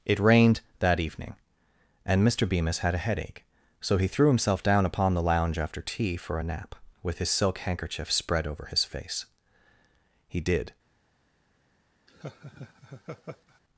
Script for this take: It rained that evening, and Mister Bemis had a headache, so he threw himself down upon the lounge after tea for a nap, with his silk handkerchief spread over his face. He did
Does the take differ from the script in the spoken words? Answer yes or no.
no